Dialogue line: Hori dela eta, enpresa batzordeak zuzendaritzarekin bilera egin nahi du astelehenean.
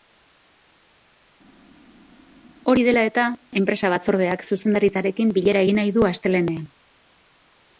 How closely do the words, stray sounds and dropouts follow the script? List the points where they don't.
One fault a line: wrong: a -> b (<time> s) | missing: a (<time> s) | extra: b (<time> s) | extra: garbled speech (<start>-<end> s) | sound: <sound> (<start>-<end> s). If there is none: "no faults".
no faults